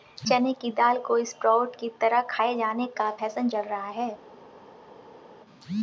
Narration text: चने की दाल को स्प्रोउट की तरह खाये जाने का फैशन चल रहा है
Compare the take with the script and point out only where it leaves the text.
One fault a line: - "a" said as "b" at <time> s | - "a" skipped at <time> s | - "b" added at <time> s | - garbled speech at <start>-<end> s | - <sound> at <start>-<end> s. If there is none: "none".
none